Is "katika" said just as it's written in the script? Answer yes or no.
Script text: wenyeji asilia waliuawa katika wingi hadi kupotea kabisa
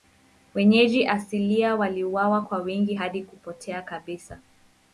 no